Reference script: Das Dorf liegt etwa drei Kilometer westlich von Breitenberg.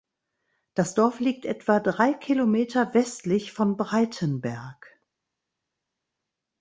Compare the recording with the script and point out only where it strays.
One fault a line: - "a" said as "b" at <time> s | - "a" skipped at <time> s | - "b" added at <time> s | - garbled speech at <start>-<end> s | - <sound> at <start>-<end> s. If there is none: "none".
none